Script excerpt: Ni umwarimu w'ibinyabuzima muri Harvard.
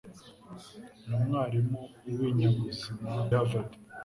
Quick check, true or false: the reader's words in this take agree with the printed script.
false